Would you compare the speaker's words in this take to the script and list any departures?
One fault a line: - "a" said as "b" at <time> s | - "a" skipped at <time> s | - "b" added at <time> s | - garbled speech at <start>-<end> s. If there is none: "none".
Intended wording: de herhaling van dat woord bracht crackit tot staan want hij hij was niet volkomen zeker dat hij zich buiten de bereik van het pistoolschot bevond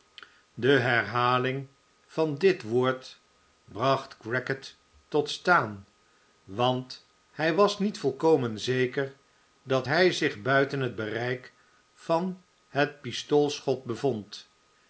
- "dat" said as "dit" at 2.4 s
- "hij" skipped at 7.5 s
- "de" said as "het" at 10.8 s